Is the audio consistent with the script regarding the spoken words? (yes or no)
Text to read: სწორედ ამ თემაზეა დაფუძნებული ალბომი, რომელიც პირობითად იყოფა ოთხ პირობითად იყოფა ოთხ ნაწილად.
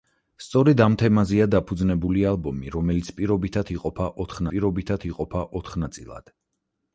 yes